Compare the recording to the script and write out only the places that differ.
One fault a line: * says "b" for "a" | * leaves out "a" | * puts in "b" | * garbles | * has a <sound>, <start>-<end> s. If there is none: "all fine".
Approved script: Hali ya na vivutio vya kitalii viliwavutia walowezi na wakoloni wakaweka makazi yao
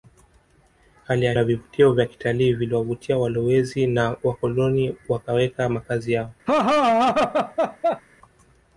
* has a laugh, 6.5-8.0 s